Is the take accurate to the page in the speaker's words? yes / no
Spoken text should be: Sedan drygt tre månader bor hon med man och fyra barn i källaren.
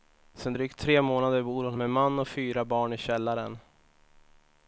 yes